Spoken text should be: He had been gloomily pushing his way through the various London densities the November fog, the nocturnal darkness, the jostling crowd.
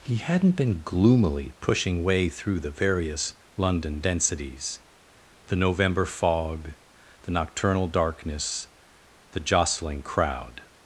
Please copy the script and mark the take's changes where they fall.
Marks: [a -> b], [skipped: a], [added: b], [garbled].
He [had -> hadn't] been gloomily pushing [skipped: his] way through the various London densities the November fog, the nocturnal darkness, the jostling crowd.